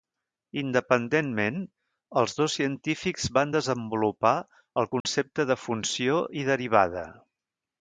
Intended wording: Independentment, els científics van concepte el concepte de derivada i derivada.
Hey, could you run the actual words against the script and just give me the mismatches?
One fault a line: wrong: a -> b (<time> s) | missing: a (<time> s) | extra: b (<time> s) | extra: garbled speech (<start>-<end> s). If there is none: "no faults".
extra: dos (2.4 s)
wrong: concepte -> desenvolupar (3.6 s)
wrong: derivada -> funció (5.7 s)